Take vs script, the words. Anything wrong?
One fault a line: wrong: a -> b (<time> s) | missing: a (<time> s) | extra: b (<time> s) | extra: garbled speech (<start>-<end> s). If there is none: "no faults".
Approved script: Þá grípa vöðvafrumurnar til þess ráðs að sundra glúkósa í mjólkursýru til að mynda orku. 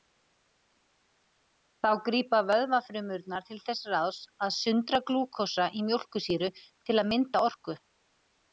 no faults